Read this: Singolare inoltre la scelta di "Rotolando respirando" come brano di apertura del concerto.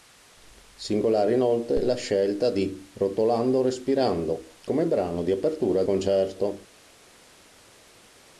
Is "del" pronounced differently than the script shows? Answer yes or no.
yes